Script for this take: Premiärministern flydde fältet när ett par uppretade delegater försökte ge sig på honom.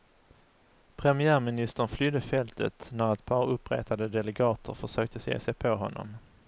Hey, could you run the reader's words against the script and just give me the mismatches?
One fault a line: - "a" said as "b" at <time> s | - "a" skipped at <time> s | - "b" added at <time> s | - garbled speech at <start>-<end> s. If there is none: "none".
none